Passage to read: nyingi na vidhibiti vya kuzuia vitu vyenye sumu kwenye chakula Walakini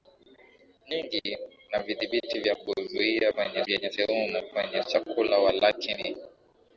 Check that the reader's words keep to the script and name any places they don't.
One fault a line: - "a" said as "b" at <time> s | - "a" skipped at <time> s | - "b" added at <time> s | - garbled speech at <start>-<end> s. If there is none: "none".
- "vitu" said as "kwenye" at 3.3 s